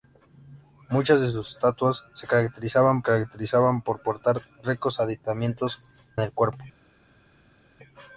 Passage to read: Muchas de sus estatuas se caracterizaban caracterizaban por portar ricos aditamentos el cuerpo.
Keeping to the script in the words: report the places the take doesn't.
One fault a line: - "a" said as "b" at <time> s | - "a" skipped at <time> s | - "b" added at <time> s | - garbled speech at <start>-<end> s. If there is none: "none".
none